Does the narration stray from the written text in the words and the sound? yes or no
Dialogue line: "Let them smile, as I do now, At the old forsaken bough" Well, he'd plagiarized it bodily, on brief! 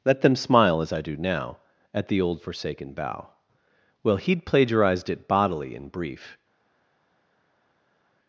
yes